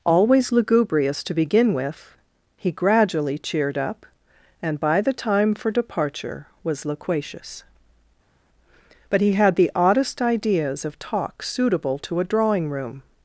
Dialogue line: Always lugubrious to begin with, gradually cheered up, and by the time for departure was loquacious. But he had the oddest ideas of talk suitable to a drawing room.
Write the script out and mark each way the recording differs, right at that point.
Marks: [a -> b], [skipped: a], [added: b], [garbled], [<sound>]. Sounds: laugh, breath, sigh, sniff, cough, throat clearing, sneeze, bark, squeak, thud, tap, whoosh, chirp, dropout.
Always lugubrious to begin with, [added: he] gradually cheered up, and by the time for departure was loquacious. But he had the oddest ideas of talk suitable to a drawing room.